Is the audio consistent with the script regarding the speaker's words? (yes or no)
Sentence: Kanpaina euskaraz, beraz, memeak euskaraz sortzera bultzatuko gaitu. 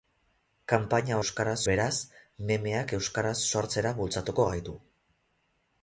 yes